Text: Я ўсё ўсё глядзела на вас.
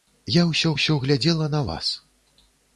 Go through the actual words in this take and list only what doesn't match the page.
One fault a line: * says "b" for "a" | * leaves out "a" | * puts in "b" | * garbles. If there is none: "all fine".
all fine